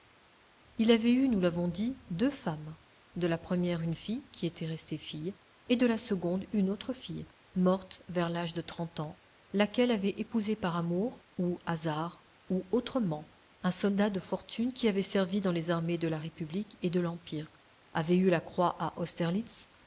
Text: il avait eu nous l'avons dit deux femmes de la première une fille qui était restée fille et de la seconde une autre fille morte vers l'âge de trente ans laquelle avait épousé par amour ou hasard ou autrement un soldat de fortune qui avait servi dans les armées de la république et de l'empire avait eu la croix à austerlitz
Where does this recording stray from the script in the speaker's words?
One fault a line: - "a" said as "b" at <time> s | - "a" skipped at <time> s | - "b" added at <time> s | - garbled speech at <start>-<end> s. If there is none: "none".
none